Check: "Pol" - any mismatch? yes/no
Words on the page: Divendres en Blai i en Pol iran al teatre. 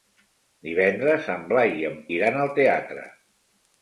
yes